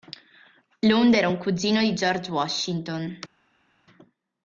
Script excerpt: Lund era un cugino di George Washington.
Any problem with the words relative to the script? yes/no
no